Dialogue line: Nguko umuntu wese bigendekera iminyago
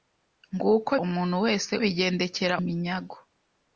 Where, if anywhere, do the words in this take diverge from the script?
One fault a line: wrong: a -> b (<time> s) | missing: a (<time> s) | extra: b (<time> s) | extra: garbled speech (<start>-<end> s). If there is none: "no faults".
no faults